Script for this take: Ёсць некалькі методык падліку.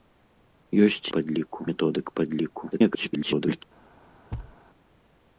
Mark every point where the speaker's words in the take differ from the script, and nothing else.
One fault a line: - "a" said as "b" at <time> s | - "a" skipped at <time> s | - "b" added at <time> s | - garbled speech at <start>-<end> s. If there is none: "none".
- "некалькі" said as "падліку" at 1.2 s
- garbled speech at 2.7-3.6 s